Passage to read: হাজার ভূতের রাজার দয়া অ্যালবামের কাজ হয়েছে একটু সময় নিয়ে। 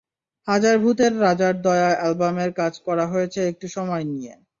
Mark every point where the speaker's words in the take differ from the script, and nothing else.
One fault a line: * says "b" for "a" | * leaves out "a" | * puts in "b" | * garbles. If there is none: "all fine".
* puts in "করা"